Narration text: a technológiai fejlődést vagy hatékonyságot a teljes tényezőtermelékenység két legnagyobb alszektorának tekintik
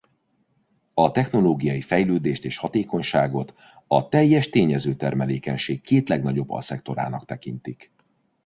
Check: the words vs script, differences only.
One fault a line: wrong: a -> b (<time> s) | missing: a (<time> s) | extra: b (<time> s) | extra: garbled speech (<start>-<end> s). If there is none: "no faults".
wrong: vagy -> és (2.5 s)